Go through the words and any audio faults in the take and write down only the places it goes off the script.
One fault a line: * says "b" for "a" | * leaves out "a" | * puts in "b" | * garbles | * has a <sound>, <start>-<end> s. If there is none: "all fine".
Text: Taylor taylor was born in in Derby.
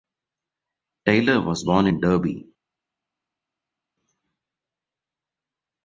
* leaves out "taylor"
* leaves out "in"